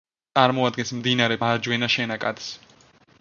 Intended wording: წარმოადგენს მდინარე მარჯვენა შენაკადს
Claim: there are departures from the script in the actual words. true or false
false